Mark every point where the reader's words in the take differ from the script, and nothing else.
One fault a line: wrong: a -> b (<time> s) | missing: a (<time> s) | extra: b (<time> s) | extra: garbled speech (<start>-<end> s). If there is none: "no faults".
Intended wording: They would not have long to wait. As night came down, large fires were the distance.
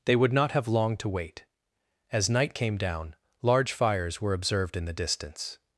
extra: observed in (4.3 s)